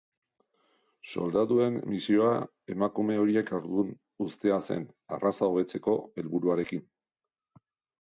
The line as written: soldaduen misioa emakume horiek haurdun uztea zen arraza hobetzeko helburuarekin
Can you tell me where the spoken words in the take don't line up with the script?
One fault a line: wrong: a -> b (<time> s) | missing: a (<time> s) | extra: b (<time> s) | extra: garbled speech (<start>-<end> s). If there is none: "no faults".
no faults